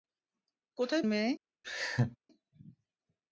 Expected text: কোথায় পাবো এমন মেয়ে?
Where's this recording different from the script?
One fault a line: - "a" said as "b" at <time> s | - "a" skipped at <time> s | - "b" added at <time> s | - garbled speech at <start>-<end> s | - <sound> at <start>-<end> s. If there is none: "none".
- "পাবো এমন" skipped at 1.0 s
- laugh at 1.6-2.2 s